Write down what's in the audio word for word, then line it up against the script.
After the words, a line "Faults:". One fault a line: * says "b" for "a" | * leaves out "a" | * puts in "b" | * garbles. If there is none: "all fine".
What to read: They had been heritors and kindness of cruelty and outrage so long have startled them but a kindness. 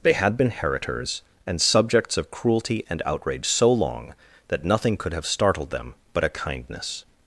They had been heritors and subjects of cruelty and outrage so long that nothing could have startled them but a kindness.
Faults:
* says "subjects" for "kindness"
* puts in "that nothing could"